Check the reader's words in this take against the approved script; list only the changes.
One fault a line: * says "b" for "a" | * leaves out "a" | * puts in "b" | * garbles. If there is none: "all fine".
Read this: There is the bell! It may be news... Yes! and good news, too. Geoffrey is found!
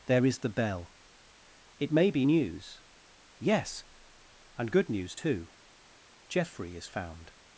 all fine